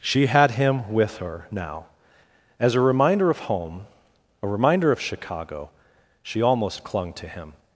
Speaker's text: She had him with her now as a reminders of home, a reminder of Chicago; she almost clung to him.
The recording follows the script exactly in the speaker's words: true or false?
false